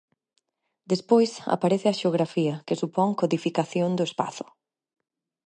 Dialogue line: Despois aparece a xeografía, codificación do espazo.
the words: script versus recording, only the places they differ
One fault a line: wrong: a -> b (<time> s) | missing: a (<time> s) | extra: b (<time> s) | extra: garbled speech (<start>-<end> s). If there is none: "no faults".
extra: que supón (2.7 s)